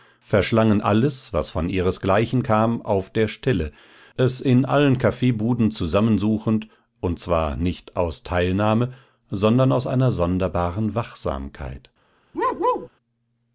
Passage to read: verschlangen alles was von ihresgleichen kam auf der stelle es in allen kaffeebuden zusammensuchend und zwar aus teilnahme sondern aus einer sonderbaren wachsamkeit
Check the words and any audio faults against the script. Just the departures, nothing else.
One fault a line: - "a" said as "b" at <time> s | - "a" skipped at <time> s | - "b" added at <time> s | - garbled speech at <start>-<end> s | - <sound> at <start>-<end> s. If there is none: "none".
- "nicht" added at 7.5 s
- bark at 12.3-12.9 s